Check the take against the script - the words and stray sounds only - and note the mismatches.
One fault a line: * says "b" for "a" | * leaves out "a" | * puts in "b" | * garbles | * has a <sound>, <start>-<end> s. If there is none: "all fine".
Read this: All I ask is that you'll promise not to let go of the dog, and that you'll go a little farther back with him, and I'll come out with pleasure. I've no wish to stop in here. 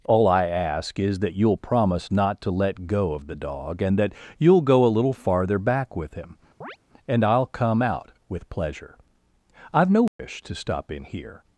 * has a chirp, 6.6-6.8 s
* has a dropout, 10.1-10.2 s